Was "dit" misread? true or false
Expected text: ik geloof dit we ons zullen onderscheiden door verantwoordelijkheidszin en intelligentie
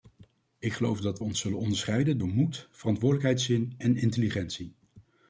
true